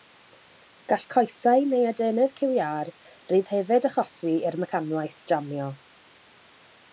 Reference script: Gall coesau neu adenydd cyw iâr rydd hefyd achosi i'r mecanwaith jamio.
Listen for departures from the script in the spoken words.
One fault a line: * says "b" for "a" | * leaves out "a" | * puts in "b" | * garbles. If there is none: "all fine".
all fine